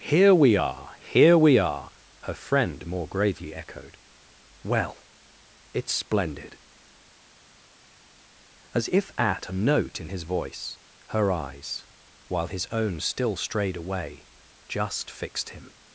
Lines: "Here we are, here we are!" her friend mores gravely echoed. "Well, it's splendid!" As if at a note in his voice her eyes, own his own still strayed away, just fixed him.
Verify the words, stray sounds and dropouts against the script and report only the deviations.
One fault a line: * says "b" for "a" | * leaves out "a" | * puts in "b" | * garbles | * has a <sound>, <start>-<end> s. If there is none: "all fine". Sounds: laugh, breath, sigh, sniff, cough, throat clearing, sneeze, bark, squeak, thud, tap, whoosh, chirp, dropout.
* says "more" for "mores"
* says "while" for "own"